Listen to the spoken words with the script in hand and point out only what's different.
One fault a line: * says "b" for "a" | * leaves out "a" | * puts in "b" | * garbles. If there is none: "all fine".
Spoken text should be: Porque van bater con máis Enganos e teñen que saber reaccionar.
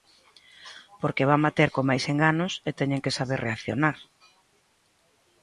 all fine